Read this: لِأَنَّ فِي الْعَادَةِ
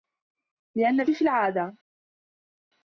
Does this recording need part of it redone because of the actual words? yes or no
no